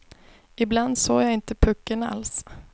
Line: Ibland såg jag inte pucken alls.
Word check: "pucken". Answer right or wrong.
right